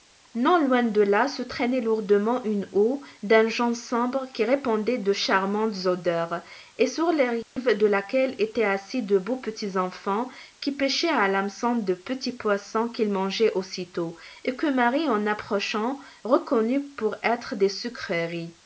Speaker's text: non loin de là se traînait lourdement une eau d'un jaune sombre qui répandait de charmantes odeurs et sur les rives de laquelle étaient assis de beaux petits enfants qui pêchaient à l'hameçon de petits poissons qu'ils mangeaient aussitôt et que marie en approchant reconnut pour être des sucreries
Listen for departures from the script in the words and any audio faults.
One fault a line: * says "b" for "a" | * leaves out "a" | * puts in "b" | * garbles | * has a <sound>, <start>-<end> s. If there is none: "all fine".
* has a dropout, 7.4-7.6 s